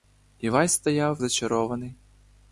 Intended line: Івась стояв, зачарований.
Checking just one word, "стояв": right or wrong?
right